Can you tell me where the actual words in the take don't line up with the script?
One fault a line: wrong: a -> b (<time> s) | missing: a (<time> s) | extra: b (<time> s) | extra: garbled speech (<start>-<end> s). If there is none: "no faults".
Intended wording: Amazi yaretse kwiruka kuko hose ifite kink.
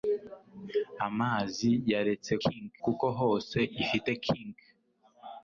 wrong: kwiruka -> kink (2.4 s)